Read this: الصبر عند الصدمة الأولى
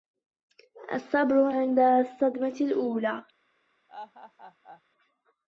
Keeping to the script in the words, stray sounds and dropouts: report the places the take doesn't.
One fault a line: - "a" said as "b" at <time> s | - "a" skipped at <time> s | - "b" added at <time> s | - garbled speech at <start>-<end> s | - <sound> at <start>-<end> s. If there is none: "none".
- laugh at 3.9-4.8 s